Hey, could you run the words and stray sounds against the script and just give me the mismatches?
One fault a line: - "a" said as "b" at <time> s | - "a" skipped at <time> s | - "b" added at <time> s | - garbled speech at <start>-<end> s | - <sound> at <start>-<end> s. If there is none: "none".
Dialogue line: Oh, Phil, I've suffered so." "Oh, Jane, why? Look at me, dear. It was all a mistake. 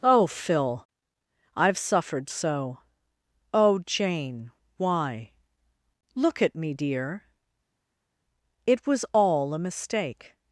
none